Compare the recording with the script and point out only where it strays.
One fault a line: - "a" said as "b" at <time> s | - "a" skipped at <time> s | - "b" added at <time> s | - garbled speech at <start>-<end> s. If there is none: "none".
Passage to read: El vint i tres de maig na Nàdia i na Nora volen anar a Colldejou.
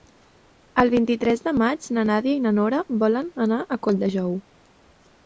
none